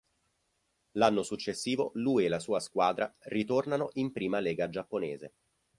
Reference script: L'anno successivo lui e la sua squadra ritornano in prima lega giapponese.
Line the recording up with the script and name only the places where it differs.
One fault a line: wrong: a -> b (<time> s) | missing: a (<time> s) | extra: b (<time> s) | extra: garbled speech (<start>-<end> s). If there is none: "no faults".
no faults